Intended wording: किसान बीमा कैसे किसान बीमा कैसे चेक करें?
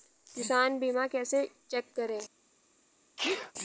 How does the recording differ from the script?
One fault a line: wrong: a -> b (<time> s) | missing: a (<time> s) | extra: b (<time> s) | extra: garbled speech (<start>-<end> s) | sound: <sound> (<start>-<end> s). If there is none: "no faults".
missing: किसान बीमा कैसे (1.4 s)
sound: sneeze (3.2-3.5 s)